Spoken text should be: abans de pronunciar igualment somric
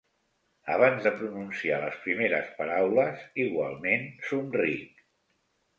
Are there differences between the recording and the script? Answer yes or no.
yes